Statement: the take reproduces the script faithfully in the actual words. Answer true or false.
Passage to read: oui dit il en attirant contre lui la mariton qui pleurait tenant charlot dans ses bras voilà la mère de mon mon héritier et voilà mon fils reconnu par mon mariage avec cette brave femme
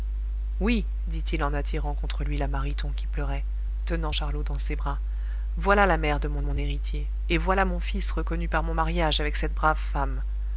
true